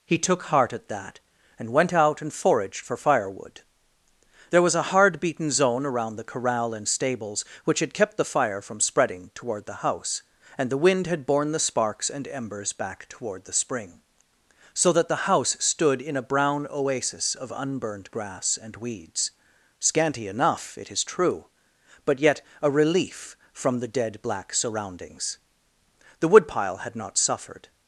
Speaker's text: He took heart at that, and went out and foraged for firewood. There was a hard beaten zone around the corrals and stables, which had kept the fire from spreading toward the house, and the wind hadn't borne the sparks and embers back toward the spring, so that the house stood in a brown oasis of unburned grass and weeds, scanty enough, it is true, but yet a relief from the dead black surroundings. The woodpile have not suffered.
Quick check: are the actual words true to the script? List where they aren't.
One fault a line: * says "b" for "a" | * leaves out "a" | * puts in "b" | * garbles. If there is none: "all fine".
* says "corral" for "corrals"
* says "had" for "hadn't"
* says "had" for "have"